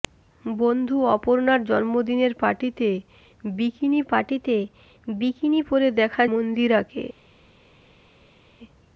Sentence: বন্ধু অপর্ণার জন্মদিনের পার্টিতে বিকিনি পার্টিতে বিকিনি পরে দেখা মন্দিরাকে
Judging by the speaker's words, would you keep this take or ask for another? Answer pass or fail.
pass